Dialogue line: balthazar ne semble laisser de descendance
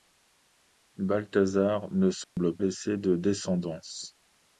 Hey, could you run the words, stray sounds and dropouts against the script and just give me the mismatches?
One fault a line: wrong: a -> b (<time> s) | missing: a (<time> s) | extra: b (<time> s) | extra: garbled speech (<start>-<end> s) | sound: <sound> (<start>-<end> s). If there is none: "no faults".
sound: dropout (2.2-2.4 s)